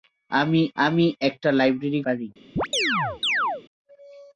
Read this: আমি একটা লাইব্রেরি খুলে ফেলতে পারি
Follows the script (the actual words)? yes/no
no